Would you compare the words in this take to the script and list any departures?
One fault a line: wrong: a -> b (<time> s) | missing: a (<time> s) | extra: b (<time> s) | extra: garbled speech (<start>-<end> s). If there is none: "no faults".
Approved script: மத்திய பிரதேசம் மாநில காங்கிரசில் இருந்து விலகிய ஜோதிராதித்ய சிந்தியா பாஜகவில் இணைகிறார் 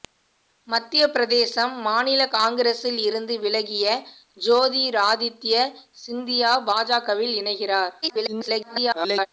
extra: garbled speech (8.0-9.3 s)